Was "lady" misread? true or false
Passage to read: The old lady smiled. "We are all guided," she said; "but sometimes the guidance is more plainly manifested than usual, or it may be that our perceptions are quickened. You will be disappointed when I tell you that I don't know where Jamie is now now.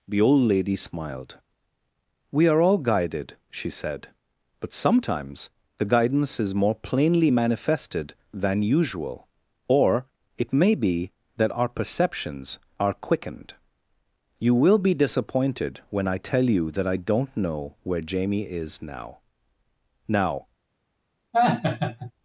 false